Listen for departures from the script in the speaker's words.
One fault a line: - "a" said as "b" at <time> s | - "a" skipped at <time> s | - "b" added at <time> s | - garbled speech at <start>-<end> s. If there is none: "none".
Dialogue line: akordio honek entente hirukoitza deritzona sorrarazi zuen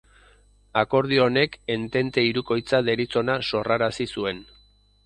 none